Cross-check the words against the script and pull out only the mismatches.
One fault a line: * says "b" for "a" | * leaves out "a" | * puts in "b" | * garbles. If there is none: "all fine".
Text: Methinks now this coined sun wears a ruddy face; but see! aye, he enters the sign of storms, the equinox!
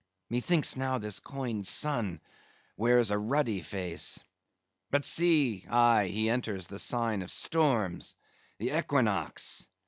all fine